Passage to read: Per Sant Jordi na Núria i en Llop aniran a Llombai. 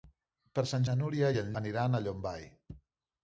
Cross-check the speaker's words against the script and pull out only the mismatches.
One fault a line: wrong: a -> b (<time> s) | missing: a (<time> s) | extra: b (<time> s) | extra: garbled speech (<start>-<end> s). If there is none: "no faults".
missing: Jordi (0.8 s)
missing: Llop (1.5 s)